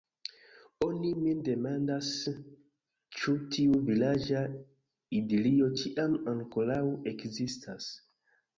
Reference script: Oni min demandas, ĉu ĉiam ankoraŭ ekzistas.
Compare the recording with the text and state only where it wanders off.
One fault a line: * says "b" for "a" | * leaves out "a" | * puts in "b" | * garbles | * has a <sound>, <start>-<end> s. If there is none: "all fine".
* puts in "tiu vilaĝa idilio"